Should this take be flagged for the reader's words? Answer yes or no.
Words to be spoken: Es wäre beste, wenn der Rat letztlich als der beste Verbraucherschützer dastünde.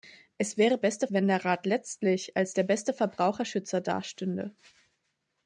no